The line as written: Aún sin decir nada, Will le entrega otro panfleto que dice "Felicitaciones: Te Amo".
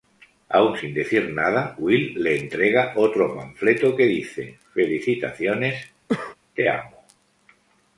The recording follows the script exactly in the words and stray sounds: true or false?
false